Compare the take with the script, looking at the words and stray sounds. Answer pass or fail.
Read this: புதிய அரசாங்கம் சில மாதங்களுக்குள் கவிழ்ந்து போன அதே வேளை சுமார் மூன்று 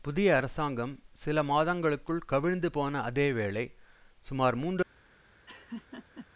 fail